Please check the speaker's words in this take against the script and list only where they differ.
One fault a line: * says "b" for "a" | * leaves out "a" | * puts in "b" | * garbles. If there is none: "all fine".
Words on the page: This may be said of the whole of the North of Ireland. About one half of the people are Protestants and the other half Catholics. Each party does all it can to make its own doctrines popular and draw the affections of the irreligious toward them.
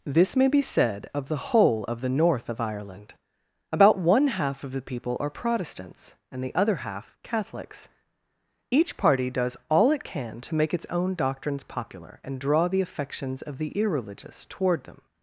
all fine